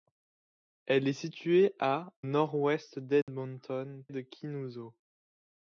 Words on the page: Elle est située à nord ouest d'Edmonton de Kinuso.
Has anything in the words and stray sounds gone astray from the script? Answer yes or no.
yes